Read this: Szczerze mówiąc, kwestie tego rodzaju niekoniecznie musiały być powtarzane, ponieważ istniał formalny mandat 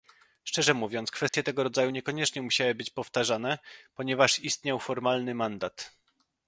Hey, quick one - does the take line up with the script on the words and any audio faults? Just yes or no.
no